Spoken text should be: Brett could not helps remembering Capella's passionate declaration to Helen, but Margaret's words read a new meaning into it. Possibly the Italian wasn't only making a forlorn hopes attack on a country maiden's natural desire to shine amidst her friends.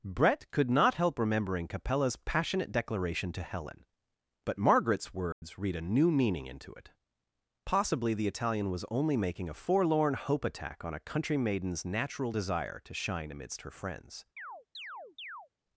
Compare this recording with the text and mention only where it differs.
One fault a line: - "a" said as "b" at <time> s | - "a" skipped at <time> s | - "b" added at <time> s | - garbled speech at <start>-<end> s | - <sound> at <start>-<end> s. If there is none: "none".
- "helps" said as "help" at 0.9 s
- dropout at 5.3-5.4 s
- "wasn't" said as "was" at 8.7 s
- "hopes" said as "hope" at 10.2 s
- chirp at 14.4-15.5 s